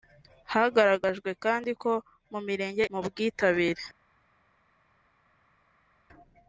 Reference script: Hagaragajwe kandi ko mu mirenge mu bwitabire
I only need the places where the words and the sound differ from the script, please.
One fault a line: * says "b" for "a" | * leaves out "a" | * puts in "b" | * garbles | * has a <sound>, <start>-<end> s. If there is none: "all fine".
all fine